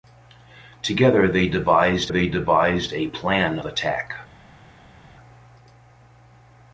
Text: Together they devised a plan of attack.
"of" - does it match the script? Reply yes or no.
no